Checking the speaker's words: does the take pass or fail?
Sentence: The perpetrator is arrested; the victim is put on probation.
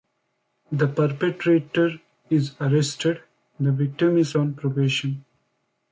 fail